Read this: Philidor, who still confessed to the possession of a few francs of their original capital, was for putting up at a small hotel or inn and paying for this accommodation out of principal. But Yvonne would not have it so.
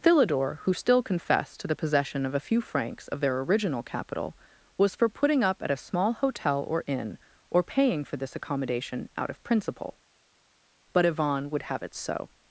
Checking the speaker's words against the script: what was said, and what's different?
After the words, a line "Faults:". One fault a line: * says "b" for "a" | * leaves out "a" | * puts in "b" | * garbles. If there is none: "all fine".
Philidor, who still confessed to the possession of a few francs of their original capital, was for putting up at a small hotel or inn or paying for this accommodation out of principal. But Yvonne would have it so.
Faults:
* says "or" for "and"
* leaves out "not"